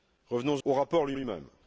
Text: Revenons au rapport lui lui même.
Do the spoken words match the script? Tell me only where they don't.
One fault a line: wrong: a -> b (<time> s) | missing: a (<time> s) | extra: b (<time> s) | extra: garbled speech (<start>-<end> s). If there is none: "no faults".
no faults